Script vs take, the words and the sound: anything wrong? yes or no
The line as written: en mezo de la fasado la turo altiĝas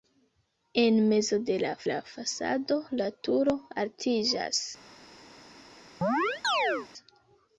yes